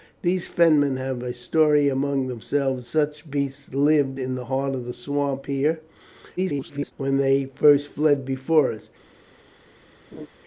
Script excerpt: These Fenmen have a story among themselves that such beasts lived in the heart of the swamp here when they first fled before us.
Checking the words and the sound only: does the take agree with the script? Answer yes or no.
no